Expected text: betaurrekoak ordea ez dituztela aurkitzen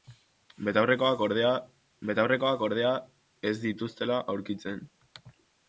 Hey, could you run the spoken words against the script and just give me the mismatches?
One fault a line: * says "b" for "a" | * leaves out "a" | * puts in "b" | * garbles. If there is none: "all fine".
* puts in "betaurrekoak ordea"